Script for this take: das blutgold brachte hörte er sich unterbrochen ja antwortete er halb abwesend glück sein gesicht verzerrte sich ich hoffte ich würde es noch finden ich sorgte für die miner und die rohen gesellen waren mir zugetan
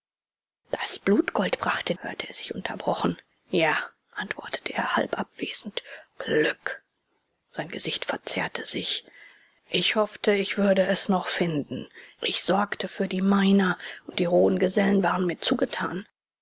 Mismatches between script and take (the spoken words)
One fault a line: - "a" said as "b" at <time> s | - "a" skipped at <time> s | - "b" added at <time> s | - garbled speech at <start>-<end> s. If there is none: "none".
none